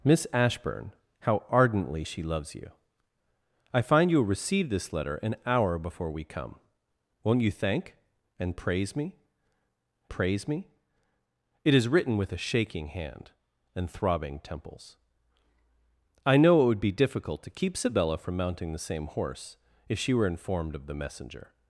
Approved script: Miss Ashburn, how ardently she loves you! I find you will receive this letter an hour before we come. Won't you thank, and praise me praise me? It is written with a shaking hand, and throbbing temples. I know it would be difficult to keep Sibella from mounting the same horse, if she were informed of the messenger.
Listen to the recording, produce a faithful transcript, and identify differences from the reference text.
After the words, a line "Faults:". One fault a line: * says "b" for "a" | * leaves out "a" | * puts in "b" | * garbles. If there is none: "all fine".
Miss Ashburn, how ardently she loves you! I find you will receive this letter an hour before we come. Won't you thank, and praise me praise me? It is written with a shaking hand, and throbbing temples. I know it would be difficult to keep Sibella from mounting the same horse, if she were informed of the messenger.
Faults:
all fine